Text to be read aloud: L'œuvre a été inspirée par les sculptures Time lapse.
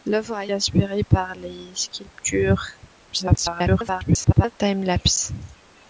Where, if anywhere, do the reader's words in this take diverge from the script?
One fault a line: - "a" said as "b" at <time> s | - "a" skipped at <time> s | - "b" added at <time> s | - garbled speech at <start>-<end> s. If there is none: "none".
- "été" skipped at 0.5 s
- garbled speech at 3.1-4.5 s